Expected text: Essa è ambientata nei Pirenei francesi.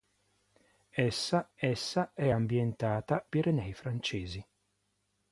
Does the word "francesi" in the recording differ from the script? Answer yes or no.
no